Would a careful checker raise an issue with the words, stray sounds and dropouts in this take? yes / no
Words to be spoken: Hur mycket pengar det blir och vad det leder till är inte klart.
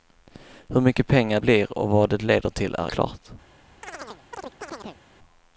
yes